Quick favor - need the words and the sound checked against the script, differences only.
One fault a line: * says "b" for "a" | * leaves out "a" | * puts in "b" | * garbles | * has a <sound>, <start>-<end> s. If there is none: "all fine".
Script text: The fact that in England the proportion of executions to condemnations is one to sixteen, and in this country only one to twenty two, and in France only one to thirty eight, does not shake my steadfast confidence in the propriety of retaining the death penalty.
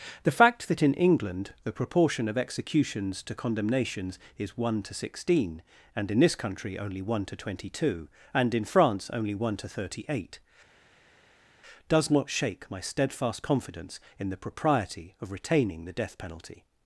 all fine